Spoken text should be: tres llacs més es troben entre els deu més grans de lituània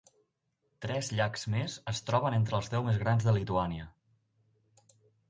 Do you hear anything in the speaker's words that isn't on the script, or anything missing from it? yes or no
no